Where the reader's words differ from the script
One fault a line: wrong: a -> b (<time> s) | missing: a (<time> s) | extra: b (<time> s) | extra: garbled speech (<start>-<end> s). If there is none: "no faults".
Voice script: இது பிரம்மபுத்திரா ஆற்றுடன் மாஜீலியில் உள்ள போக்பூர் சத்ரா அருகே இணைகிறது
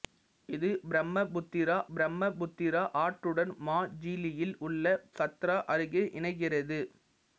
extra: பிரம்மபுத்திரா (1.9 s)
missing: போக்பூர் (4.8 s)